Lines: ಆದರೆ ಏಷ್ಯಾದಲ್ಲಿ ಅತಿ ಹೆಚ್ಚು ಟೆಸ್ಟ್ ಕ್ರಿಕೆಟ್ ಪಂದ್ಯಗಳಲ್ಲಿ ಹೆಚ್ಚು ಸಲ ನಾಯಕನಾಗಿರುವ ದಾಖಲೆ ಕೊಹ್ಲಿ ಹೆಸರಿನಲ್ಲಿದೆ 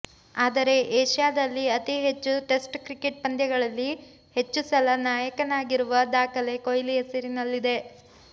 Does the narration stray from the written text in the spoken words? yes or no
no